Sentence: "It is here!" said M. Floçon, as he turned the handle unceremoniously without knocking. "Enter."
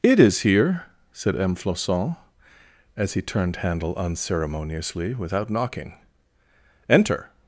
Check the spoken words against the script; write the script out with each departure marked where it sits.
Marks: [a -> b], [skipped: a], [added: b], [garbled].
"It is here!" said M. Floçon, as he turned [skipped: the] handle unceremoniously without knocking. "Enter."